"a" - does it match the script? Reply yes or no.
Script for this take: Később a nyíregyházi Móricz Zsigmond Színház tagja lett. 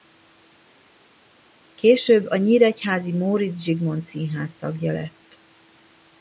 yes